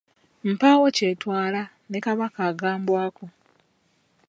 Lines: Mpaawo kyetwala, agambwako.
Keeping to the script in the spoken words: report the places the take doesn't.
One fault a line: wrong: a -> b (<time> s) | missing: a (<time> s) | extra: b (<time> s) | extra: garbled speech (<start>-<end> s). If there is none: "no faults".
extra: ne Kabaka (1.9 s)